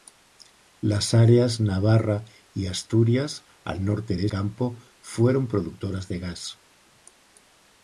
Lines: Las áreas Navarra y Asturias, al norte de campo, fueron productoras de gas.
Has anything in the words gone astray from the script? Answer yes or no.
no